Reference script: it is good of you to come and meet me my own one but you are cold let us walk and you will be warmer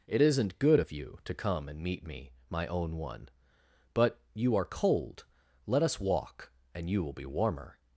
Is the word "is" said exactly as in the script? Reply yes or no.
no